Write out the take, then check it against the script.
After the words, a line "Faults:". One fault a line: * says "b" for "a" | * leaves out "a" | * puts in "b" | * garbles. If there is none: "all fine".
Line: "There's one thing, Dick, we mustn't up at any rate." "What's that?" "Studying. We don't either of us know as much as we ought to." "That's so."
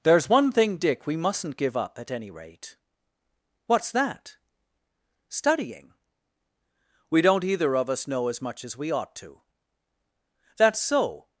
"There's one thing, Dick, we mustn't give up at any rate." "What's that?" "Studying. We don't either of us know as much as we ought to." "That's so."
Faults:
* puts in "give"